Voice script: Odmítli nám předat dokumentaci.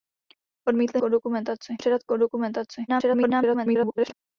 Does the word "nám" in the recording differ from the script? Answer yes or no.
yes